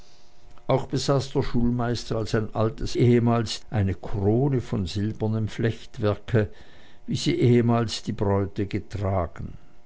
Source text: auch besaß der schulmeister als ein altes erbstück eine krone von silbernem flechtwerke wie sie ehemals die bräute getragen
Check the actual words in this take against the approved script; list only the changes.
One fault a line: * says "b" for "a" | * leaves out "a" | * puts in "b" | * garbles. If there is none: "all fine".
* says "ehemals" for "erbstück"